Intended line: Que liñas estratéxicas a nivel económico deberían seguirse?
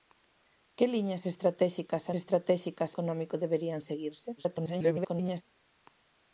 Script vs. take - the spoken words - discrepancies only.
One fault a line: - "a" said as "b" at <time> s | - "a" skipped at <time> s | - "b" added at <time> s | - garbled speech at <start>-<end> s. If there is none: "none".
- "nivel" said as "estratéxicas" at 2.2 s
- garbled speech at 4.4-5.4 s